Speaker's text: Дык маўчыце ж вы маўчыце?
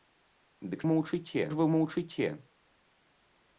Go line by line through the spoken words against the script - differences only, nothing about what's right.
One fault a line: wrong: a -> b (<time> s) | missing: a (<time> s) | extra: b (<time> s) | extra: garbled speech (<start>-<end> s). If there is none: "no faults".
no faults